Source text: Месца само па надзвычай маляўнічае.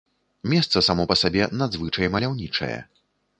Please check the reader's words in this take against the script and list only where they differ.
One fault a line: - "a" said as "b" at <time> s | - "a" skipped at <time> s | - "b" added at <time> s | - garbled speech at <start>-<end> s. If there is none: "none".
- "сабе" added at 1.2 s